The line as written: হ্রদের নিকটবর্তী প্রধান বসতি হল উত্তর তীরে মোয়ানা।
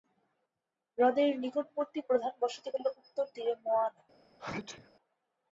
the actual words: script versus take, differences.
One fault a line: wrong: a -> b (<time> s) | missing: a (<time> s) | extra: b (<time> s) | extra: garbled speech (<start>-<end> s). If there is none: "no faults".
no faults